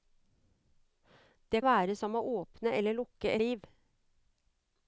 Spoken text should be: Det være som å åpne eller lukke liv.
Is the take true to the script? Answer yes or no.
yes